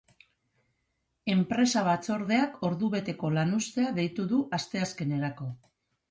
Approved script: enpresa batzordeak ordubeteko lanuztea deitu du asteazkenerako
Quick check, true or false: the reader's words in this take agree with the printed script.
true